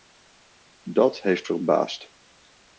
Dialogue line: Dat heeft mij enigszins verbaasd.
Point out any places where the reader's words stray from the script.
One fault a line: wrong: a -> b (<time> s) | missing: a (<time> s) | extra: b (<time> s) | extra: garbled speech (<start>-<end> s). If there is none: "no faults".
missing: mij enigszins (1.4 s)